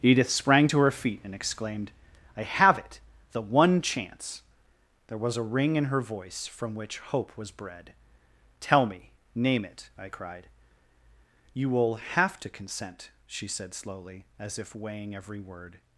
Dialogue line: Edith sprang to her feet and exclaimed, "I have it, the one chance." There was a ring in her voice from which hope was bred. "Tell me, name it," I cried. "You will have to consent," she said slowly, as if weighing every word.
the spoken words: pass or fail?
pass